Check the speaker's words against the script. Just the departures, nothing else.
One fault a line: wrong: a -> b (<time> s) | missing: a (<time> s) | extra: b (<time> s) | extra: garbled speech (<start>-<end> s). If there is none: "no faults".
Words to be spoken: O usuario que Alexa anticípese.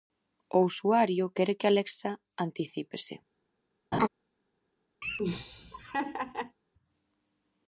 extra: quere (1.4 s)